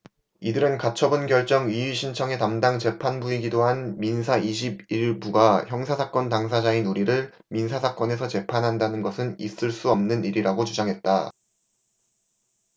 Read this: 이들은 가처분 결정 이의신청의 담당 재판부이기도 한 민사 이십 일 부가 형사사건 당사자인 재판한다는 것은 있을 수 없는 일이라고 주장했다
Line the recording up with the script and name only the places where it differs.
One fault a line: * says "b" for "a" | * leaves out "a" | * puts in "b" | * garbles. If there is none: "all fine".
* puts in "우리를 민사사건에서"